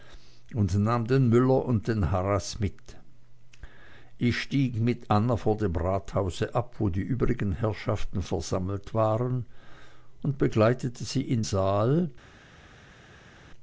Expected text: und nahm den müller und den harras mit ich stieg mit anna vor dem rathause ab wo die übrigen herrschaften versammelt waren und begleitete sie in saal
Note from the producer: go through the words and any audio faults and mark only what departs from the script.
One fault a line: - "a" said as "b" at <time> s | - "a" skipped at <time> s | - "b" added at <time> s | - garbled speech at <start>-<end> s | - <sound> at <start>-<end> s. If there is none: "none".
none